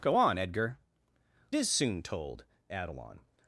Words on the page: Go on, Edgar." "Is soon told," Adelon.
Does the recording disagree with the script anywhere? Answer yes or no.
no